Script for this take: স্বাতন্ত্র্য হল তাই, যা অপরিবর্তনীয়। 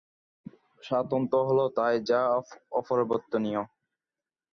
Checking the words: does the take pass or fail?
pass